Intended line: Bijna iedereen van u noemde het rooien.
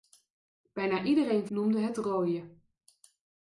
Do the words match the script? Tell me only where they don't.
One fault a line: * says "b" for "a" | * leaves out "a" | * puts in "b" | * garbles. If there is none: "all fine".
* leaves out "van u"